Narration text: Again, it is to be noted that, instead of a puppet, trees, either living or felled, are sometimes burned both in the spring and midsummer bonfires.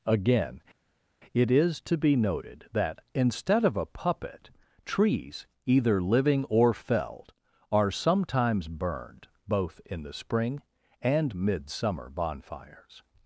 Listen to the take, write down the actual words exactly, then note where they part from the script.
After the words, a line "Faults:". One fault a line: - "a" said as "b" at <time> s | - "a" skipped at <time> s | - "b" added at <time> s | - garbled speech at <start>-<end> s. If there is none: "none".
Again, it is to be noted that, instead of a puppet, trees, either living or felled, are sometimes burned both in the spring and midsummer bonfires.
Faults:
none